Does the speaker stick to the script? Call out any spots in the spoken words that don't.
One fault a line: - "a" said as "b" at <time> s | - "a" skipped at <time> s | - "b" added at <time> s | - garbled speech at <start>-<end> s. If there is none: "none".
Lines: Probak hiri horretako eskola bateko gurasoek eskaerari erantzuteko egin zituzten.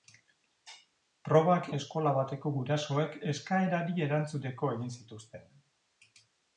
- "hiri horretako" skipped at 1.7 s